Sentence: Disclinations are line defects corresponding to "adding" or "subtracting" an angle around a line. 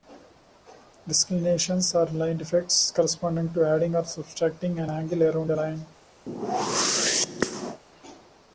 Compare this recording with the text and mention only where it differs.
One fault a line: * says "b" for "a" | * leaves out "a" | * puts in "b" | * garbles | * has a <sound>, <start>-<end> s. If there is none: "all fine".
* has a whoosh, 6.3-7.8 s